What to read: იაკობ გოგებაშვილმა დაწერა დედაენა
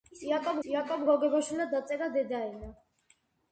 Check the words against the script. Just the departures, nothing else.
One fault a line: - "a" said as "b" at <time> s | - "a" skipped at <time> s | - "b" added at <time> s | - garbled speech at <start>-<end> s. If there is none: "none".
- "იაკობ" added at 0.7 s